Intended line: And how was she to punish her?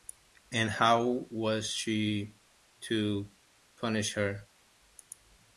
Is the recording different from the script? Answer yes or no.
no